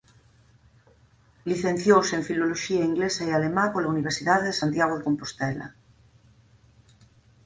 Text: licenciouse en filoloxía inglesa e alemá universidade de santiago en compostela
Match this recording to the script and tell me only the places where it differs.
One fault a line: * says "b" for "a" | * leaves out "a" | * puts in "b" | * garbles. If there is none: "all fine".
* puts in "pola"
* says "de" for "en"